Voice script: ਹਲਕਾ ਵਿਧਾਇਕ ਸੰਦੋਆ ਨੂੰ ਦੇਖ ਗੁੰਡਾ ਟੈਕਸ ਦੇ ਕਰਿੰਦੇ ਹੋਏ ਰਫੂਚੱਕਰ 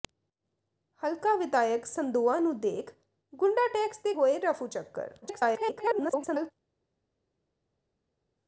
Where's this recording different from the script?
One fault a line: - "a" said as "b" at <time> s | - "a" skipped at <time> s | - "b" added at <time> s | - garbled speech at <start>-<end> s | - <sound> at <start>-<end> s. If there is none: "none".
- "ਕਰਿੰਦੇ" skipped at 4.1 s
- garbled speech at 5.2-6.5 s